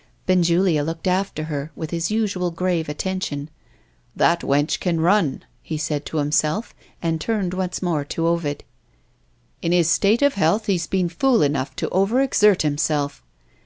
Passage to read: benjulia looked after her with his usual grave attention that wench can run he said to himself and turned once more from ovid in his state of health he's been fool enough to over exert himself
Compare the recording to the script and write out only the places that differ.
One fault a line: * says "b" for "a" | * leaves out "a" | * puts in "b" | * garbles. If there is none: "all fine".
* says "to" for "from"